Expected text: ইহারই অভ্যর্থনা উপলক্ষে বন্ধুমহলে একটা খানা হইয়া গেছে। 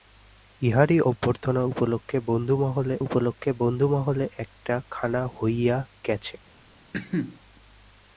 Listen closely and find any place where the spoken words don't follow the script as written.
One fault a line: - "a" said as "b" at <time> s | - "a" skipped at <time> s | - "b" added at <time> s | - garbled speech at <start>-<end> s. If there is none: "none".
- "উপলক্ষে বন্ধুমহলে" added at 3.0 s